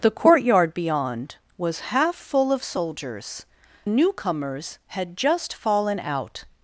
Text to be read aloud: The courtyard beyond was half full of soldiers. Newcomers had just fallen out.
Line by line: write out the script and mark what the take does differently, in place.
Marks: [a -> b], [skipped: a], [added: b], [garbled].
The courtyard beyond was half full of soldiers. Newcomers had just fallen out.